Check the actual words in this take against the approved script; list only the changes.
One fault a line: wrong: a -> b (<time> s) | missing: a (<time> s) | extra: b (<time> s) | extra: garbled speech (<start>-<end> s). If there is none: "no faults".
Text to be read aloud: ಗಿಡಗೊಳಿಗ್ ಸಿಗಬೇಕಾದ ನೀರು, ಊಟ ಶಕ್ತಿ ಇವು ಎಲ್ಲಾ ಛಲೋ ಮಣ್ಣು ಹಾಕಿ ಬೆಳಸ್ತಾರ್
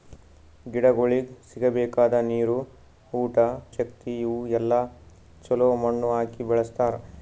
no faults